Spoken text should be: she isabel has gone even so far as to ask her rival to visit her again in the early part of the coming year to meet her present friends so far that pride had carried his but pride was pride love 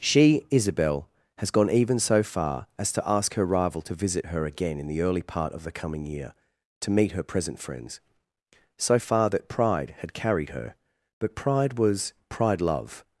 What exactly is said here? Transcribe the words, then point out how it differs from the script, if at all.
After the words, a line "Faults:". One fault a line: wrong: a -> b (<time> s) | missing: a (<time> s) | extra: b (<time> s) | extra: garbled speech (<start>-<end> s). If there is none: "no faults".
she isabel has gone even so far as to ask her rival to visit her again in the early part of the coming year to meet her present friends so far that pride had carried her but pride was pride love
Faults:
wrong: his -> her (10.5 s)